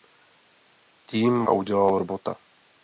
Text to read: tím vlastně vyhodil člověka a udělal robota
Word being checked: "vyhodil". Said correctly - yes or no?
no